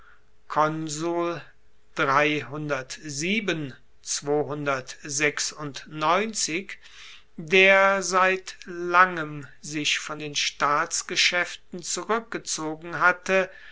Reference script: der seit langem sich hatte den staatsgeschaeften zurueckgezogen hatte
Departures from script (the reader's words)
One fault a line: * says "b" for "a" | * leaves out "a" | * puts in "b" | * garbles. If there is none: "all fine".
* says "von" for "hatte"